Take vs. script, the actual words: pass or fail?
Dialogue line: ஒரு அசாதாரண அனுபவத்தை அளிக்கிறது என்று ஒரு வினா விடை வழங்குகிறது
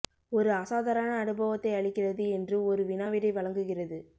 pass